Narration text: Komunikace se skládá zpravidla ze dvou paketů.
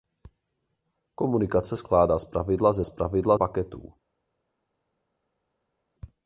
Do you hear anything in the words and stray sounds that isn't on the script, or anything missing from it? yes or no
yes